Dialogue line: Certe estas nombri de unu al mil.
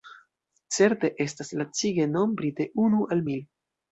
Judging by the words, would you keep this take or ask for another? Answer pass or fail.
fail